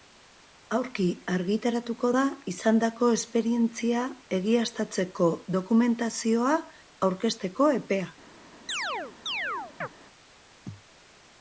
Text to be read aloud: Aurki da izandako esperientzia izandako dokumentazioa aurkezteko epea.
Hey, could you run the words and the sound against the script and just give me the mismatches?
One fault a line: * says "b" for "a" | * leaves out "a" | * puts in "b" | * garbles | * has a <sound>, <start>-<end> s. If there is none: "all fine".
* puts in "argitaratuko"
* says "egiaztatzeko" for "izandako"
* has a chirp, 8.7-9.9 s